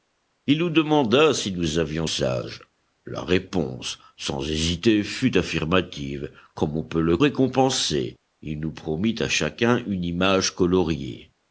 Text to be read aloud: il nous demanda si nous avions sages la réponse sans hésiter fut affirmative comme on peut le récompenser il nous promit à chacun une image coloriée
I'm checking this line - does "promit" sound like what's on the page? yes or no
yes